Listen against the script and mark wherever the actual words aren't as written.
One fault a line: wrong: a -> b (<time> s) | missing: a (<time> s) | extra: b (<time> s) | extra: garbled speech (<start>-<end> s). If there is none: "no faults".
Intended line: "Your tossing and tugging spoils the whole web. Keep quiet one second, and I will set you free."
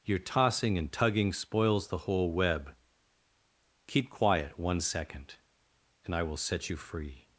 no faults